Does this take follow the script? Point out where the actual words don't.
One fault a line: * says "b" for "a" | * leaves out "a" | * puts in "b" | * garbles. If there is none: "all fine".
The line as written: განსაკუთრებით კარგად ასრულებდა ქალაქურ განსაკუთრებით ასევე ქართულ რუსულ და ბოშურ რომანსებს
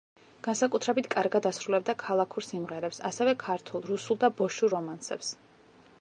* says "სიმღერებს" for "განსაკუთრებით"